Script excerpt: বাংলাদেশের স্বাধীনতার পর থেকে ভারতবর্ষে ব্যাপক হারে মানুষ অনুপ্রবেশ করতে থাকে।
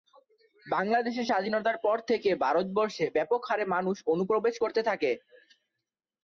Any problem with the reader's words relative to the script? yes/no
no